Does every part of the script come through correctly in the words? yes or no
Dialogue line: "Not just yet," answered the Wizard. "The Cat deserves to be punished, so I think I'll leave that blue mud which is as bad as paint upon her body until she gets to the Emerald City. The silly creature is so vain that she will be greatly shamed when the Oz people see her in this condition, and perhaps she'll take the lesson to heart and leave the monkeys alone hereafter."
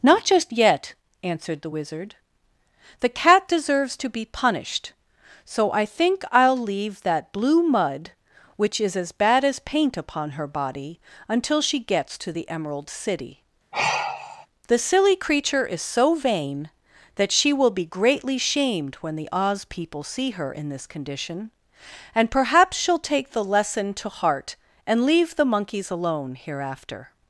yes